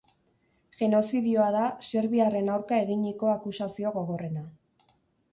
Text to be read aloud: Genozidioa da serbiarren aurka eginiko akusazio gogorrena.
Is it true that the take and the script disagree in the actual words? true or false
false